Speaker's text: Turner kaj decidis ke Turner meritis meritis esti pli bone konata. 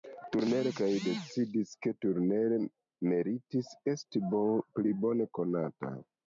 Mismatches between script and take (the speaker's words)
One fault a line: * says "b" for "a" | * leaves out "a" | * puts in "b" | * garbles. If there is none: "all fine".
* leaves out "meritis"